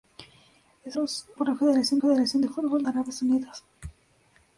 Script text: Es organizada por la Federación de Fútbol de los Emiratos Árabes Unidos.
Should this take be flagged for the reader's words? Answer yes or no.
yes